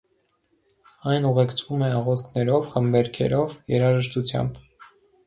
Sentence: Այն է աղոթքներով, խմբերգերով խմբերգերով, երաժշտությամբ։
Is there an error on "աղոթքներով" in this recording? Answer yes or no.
no